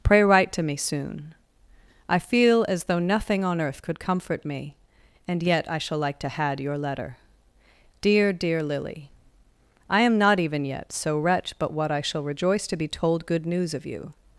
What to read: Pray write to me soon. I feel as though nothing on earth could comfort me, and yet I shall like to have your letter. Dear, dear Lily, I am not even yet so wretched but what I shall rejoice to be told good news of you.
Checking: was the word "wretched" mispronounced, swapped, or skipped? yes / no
yes